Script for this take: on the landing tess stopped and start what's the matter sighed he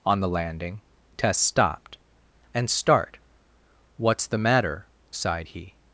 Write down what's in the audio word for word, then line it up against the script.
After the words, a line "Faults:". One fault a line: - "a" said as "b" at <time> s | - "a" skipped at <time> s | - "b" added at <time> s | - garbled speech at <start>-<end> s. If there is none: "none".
on the landing tess stopped and start what's the matter sighed he
Faults:
none